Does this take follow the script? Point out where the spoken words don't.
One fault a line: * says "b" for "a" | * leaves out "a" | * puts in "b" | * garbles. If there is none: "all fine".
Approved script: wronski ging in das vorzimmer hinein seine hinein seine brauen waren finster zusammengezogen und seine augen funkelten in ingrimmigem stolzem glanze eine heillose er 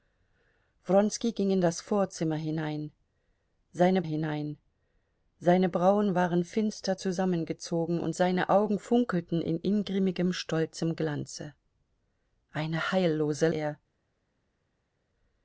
all fine